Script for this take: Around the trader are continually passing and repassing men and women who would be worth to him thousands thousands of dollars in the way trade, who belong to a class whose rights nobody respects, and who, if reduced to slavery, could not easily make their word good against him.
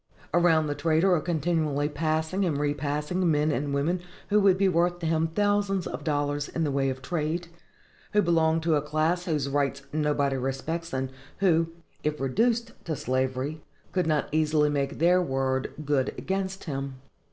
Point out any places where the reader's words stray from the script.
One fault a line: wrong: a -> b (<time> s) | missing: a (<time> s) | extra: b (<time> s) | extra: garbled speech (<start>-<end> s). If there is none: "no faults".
missing: thousands (5.9 s)
extra: of (6.9 s)